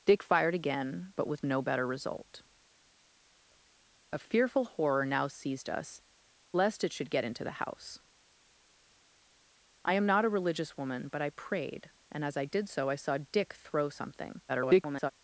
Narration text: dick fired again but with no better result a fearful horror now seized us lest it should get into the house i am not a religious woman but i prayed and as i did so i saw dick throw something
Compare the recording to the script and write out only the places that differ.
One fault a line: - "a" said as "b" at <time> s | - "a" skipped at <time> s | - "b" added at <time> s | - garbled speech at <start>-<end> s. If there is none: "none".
- garbled speech at 14.5-15.1 s